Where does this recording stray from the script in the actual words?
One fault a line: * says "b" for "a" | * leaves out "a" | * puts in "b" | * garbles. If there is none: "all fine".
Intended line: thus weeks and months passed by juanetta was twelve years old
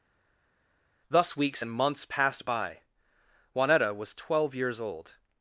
all fine